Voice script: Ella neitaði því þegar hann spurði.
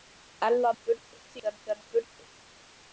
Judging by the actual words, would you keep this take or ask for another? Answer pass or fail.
fail